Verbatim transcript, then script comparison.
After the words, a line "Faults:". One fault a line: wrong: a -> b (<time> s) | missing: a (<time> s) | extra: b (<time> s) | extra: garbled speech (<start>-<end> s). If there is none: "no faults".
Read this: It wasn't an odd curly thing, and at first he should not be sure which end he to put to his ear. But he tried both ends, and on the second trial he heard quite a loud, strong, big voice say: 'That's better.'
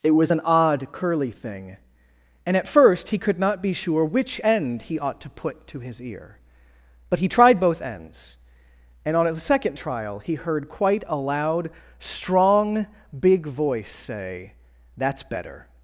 It was an odd curly thing, and at first he could not be sure which end he ought to put to his ear. But he tried both ends, and on the second trial he heard quite a loud, strong, big voice say: 'That's better.'
Faults:
wrong: wasn't -> was (0.1 s)
wrong: should -> could (3.2 s)
extra: ought (5.0 s)